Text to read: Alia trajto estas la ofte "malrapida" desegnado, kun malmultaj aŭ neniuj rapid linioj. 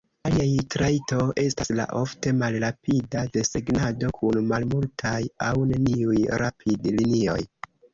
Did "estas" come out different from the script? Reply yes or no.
no